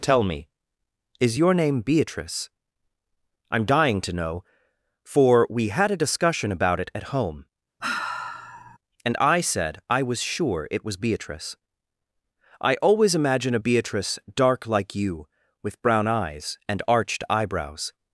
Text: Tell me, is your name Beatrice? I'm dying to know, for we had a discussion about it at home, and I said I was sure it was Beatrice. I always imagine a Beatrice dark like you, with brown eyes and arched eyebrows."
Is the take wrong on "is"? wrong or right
right